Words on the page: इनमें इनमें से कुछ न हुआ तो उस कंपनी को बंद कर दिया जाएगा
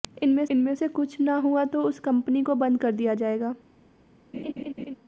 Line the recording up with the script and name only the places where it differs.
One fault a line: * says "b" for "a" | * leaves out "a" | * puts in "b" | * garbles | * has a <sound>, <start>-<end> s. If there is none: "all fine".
* has a laugh, 4.3-5.0 s